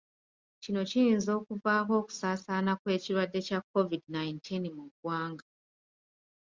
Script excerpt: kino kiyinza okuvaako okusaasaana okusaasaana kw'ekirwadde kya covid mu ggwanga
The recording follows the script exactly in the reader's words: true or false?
false